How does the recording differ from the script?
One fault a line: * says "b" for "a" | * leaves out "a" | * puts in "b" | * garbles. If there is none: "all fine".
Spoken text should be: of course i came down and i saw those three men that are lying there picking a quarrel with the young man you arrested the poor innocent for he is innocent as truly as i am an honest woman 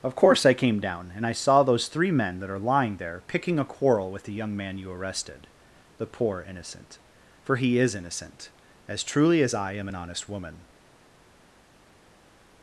all fine